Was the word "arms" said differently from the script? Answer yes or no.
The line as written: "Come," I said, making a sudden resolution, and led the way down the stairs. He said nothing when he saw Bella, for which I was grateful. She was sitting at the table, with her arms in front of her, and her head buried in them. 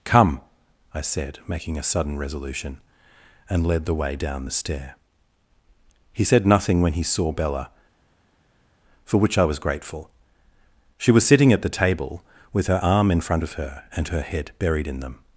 yes